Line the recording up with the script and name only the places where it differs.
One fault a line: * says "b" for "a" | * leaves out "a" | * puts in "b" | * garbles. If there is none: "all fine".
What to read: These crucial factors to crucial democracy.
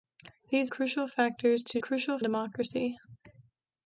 all fine